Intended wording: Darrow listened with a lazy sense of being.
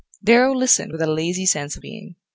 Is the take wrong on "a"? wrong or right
right